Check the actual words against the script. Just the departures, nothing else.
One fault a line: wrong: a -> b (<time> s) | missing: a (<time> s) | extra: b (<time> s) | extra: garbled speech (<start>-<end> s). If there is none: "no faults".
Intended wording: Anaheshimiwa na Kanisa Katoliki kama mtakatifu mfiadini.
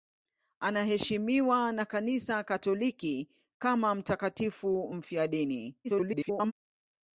extra: garbled speech (5.8-6.5 s)